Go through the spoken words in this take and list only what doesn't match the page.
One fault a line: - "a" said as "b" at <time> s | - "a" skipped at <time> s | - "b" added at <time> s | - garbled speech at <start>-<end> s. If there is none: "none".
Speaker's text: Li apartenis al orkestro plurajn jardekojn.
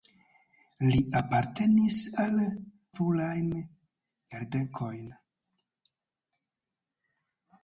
- "orkestro" skipped at 2.4 s